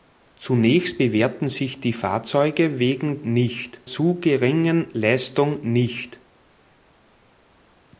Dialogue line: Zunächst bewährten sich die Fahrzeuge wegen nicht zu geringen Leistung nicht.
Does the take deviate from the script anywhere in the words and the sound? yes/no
no